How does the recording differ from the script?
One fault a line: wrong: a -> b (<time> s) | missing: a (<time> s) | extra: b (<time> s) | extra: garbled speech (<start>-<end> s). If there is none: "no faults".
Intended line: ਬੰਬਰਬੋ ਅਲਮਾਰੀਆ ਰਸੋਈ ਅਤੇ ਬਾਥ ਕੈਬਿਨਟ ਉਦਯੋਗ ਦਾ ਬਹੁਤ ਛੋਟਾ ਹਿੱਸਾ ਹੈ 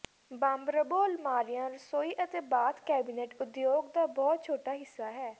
no faults